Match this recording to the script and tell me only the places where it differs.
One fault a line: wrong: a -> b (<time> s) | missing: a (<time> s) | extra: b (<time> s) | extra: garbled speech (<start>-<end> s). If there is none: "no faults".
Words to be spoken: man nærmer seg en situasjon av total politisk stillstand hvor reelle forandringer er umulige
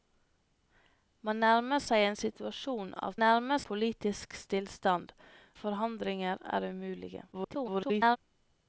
wrong: total -> nærmer (3.2 s)
missing: hvor reelle (5.1 s)
extra: garbled speech (7.3-8.2 s)